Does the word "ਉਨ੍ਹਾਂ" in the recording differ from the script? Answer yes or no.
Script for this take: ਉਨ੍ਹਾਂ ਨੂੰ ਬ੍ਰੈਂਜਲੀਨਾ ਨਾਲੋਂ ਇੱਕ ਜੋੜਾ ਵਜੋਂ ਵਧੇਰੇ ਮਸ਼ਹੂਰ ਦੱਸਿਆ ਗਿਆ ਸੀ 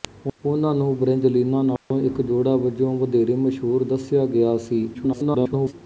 no